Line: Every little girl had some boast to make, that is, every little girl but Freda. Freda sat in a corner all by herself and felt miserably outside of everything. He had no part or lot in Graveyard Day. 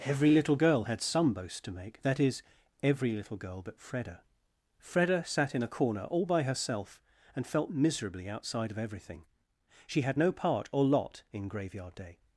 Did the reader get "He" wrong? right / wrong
wrong